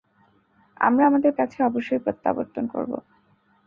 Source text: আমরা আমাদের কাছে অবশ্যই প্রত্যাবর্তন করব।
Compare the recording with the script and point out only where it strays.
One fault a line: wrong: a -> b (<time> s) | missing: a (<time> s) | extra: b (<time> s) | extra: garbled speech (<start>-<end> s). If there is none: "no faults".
no faults